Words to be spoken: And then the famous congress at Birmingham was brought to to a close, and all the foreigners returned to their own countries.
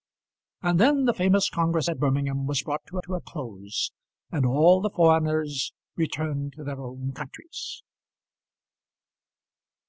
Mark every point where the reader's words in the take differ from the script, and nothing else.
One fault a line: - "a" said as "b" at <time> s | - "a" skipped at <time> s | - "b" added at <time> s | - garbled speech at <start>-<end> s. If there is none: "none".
none